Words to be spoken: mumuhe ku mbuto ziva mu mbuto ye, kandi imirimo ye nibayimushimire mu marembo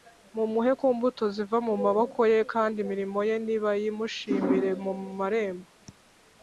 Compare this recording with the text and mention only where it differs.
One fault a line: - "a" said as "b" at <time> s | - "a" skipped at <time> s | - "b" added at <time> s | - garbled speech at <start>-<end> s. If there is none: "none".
- "mbuto" said as "maboko" at 1.8 s